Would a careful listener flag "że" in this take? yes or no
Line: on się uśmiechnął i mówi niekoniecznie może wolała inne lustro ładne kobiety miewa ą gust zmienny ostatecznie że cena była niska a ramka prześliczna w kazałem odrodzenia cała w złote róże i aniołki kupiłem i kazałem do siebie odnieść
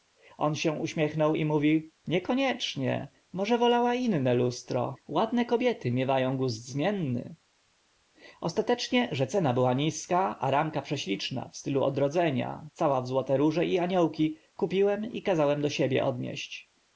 no